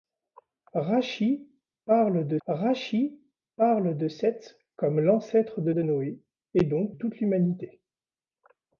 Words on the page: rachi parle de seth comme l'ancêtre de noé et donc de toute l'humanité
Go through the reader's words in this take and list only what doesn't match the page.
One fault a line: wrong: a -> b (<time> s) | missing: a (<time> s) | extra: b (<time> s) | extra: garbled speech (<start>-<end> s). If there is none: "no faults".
extra: rachi parle de (2.5 s)
extra: de (5.7 s)
missing: de (6.9 s)